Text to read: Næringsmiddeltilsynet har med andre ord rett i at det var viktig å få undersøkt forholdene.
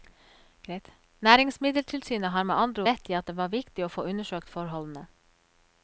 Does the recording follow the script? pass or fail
fail